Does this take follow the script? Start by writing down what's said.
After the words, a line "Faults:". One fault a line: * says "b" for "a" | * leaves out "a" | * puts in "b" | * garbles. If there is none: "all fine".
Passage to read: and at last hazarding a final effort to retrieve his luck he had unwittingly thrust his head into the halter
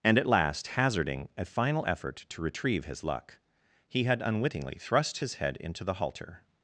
and at last hazarding a final effort to retrieve his luck he had unwittingly thrust his head into the halter
Faults:
all fine